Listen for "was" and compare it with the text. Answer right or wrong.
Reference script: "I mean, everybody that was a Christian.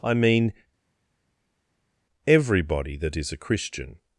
wrong